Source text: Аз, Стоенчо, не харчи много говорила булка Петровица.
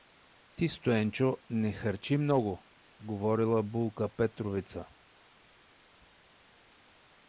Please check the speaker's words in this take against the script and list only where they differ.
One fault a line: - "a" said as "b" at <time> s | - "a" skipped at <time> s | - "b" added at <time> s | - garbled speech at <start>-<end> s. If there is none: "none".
- "Аз" said as "Ти" at 0.6 s